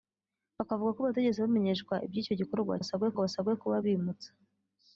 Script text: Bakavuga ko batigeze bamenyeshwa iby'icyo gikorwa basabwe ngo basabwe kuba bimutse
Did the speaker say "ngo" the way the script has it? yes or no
yes